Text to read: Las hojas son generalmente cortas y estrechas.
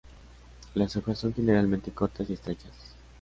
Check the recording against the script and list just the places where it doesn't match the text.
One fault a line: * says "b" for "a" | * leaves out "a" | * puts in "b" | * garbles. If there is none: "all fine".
all fine